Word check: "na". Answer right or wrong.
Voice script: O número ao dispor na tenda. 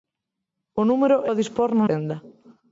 right